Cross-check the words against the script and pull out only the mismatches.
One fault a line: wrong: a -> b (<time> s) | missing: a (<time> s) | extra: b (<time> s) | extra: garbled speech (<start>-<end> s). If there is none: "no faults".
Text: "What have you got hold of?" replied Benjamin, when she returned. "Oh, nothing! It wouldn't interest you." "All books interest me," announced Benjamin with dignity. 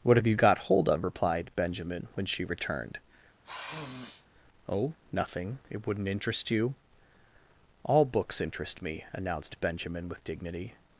no faults